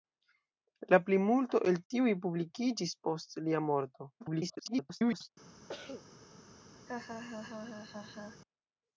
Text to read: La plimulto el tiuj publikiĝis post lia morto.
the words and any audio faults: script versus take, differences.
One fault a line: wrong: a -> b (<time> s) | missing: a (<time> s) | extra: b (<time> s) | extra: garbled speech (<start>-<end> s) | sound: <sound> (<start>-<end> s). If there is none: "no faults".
extra: garbled speech (4.2-5.3 s)
sound: cough (5.7-6.1 s)
sound: laugh (6.9-8.4 s)